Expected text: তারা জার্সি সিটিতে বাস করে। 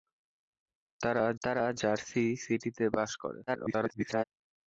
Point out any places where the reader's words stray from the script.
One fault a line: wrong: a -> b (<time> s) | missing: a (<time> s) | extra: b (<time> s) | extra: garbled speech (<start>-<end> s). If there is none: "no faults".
extra: তারা (1.4 s)
extra: garbled speech (3.5-4.2 s)